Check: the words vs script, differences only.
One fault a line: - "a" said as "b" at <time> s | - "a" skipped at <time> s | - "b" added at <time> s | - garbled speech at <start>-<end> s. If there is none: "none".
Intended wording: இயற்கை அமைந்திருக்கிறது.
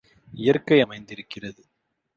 none